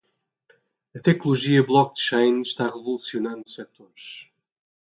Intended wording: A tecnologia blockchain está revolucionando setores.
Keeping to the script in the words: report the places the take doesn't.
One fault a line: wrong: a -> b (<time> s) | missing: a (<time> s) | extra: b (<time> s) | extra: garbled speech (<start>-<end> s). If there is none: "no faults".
no faults